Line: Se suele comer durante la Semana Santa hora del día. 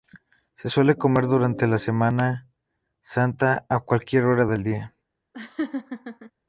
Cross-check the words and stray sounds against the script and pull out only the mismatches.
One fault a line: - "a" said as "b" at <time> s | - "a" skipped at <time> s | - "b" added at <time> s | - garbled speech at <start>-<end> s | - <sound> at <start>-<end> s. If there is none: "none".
- "a cualquier" added at 3.7 s
- laugh at 5.3-6.3 s